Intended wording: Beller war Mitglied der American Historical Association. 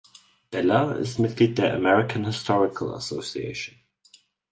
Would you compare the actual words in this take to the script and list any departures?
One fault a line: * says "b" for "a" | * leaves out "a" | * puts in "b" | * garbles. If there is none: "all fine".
* says "ist" for "war"